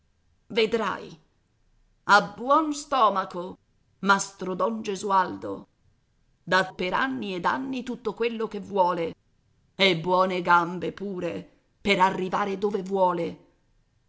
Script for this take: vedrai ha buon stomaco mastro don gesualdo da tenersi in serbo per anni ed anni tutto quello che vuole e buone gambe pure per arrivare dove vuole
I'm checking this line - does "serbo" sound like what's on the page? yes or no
no